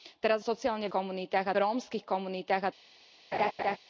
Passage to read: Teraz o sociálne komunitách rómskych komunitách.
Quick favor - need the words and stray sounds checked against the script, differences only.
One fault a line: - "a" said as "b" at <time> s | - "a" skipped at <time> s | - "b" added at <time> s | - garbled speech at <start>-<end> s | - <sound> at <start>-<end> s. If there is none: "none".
- laugh at 3.3-3.8 s